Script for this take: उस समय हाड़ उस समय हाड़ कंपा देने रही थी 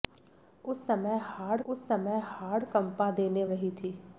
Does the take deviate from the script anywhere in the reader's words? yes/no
no